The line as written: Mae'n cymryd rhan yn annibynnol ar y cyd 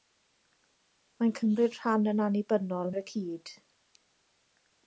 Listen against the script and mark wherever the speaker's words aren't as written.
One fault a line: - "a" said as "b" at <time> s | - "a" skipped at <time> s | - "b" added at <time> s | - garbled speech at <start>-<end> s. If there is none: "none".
none